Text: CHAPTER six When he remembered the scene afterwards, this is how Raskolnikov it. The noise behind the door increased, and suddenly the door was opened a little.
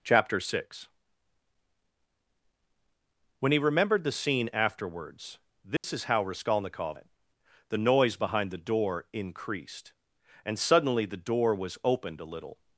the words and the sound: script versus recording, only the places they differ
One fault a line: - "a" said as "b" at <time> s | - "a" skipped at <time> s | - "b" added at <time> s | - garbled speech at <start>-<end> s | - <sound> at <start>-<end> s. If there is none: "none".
- dropout at 5.8-5.8 s